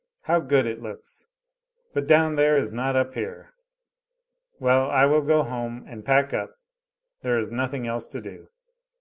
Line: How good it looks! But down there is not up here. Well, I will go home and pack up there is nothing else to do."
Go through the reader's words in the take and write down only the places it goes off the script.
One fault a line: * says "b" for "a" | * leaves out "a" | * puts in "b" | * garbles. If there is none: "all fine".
all fine